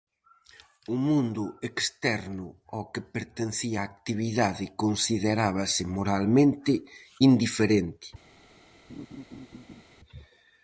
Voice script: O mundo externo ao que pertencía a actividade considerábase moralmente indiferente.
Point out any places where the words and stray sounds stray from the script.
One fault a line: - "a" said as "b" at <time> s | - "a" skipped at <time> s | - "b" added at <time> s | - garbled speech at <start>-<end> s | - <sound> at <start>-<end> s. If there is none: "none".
- laugh at 8.9-9.8 s